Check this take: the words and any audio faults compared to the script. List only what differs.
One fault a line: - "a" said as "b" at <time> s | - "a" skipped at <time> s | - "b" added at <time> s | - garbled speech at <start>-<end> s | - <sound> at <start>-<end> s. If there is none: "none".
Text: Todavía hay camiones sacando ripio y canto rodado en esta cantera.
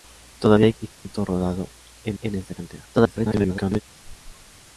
- "camiones sacando ripio" skipped at 0.7 s
- dropout at 0.9-1.1 s
- "en" added at 2.2 s
- garbled speech at 2.9-3.8 s
- squeak at 4.0-4.7 s